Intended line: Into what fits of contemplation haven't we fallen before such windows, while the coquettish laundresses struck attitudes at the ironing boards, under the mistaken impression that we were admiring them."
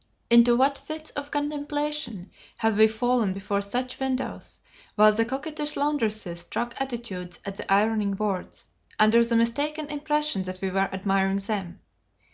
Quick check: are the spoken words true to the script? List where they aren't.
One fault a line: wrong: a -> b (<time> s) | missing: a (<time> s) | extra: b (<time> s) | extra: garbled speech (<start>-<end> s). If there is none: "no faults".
wrong: haven't -> have (2.6 s)